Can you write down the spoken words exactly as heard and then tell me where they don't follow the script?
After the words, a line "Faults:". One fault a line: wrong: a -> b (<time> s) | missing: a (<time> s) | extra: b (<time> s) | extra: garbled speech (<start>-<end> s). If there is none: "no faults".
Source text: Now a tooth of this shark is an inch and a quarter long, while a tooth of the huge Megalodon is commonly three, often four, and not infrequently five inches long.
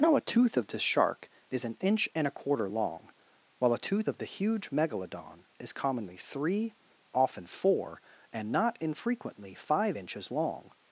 Now a tooth of this shark is an inch and a quarter long, while a tooth of the huge Megalodon is commonly three, often four, and not infrequently five inches long.
Faults:
no faults